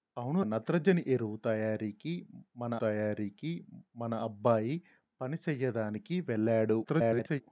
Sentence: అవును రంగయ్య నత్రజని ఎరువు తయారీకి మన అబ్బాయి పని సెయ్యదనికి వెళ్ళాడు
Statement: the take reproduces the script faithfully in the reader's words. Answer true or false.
false